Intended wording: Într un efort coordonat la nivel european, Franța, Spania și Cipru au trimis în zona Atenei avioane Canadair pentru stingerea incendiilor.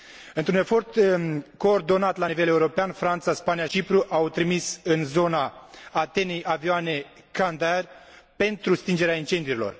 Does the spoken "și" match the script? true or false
false